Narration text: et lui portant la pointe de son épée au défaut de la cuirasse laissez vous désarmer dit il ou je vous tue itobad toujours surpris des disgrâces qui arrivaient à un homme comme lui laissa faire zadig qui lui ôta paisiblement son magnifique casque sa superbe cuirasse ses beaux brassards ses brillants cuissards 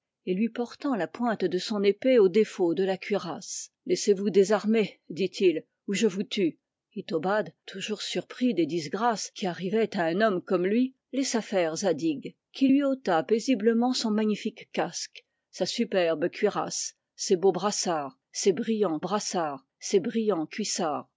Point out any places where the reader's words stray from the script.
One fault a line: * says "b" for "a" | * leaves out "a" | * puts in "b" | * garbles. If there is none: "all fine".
* puts in "brassards ses brillants"